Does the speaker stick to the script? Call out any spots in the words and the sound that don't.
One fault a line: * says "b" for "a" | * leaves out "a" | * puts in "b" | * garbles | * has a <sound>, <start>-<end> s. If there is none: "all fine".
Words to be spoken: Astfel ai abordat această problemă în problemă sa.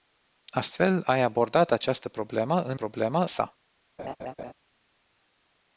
* has a laugh, 4.0-4.5 s